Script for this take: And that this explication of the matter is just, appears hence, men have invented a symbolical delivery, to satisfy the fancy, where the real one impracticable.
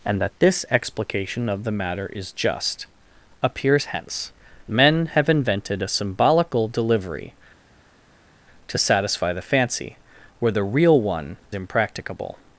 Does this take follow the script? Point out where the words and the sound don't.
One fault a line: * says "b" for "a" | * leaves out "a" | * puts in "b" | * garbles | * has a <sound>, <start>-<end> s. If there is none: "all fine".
all fine